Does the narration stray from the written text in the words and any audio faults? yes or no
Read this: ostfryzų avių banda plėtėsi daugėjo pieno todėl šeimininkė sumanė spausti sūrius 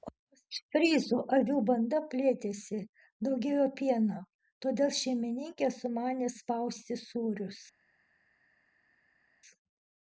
no